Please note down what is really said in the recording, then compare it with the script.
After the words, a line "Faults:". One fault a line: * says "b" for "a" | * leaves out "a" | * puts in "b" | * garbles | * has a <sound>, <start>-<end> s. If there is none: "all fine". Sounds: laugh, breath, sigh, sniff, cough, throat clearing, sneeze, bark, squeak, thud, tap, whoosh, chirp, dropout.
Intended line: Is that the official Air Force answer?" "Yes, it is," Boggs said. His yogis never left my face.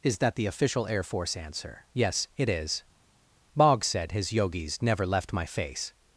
Is that the official Air Force answer?" "Yes, it is," Boggs said. His yogis never left my face.
Faults:
all fine